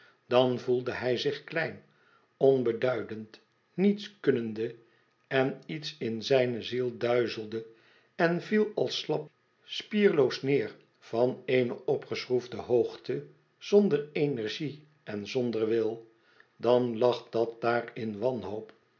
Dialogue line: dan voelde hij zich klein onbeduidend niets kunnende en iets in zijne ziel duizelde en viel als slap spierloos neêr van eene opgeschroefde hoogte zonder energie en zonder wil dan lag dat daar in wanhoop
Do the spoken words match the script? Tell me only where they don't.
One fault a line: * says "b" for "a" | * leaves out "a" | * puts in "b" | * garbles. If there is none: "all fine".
all fine